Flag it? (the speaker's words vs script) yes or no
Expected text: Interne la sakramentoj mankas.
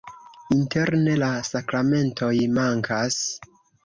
no